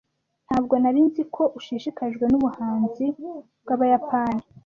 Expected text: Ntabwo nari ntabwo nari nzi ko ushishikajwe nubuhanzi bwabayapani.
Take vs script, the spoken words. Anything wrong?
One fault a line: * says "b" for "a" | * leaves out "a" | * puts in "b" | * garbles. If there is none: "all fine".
* leaves out "ntabwo nari"